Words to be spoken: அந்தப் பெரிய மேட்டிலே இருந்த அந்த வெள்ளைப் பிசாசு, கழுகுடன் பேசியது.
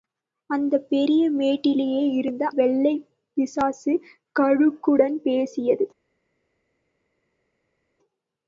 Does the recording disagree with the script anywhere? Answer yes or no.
yes